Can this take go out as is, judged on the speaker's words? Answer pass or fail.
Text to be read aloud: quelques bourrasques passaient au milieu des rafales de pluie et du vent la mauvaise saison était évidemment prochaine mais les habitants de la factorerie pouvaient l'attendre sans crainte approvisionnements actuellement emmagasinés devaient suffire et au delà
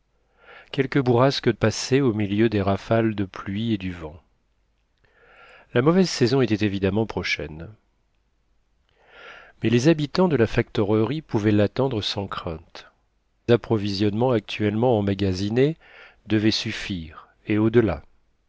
pass